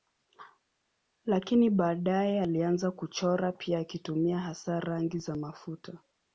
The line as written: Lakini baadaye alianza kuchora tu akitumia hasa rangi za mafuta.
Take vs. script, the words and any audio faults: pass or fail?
fail